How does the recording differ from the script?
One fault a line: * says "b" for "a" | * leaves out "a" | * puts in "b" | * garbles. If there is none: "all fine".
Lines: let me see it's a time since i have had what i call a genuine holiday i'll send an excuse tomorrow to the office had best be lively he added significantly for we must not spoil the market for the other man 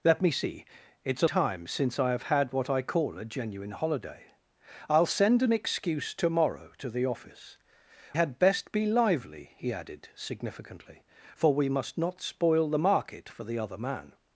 all fine